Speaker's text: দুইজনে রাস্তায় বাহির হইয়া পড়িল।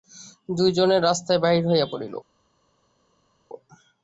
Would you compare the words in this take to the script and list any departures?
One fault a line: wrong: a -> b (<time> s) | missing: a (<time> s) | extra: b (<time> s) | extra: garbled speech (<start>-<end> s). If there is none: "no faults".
no faults